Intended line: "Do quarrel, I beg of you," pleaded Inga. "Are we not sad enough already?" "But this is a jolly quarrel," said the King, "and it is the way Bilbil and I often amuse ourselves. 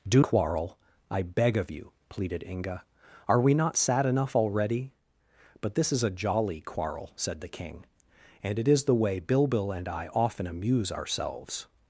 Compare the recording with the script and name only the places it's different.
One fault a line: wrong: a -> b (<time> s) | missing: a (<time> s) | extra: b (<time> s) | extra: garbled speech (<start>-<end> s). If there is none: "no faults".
no faults